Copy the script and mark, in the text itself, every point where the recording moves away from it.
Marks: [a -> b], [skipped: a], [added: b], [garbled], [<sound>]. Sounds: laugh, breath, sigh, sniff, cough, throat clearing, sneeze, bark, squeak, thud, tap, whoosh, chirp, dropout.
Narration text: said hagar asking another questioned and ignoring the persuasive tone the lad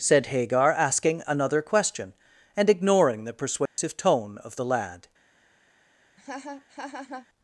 said hagar asking another [questioned -> question] and ignoring the persuasive [dropout] tone [added: of] the lad [laugh]